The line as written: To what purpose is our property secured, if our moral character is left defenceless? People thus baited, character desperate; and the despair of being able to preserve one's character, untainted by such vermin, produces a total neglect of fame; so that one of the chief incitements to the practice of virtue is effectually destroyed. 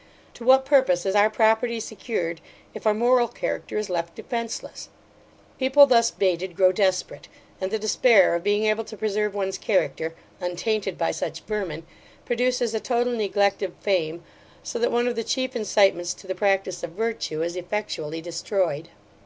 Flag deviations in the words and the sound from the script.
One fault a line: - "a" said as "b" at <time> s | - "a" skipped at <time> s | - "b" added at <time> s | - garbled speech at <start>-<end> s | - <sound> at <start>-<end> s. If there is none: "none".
- "character" said as "grow" at 6.5 s